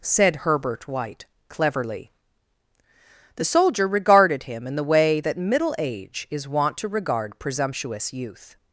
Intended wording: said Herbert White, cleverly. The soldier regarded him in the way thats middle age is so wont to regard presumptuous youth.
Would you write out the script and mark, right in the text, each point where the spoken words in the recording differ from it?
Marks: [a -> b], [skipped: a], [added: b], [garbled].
said Herbert White, cleverly. The soldier regarded him in the way [thats -> that] middle age is [skipped: so] wont to regard presumptuous youth.